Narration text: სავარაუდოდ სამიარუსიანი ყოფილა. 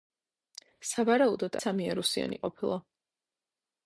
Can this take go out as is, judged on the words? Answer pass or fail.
pass